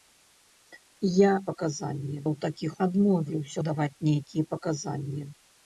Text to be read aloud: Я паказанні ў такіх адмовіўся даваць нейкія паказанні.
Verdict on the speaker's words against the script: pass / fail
pass